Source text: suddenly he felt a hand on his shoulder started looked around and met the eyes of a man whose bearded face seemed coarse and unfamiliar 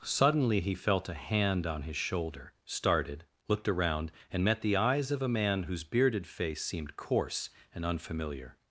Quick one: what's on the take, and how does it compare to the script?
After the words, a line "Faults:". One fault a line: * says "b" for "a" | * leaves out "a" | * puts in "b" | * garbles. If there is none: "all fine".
suddenly he felt a hand on his shoulder started looked around and met the eyes of a man whose bearded face seemed coarse and unfamiliar
Faults:
all fine